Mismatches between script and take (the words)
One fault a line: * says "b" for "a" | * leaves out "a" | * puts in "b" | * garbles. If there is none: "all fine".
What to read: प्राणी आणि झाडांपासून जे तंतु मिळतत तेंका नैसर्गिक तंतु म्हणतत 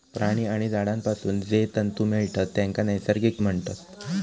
* leaves out "तंतु"